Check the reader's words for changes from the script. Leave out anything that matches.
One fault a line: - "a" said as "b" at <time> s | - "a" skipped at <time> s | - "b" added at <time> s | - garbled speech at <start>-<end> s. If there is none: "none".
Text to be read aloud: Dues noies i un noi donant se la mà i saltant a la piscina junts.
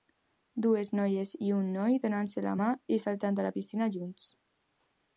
none